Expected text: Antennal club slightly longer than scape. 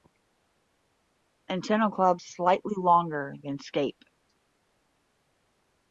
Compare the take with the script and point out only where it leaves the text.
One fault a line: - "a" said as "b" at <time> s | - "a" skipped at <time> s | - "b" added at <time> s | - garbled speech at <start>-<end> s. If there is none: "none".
none